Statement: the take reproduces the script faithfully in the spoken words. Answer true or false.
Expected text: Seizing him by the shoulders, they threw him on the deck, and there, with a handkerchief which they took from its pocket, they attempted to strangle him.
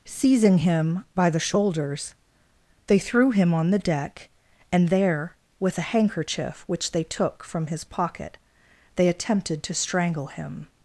false